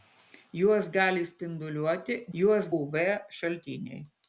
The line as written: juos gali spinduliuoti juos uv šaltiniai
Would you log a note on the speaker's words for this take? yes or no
no